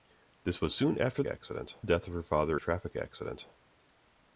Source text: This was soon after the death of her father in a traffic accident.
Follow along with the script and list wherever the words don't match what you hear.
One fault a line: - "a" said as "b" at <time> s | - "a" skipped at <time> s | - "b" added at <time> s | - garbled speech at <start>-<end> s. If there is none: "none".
- "the" said as "accident" at 1.3 s
- "in" skipped at 2.6 s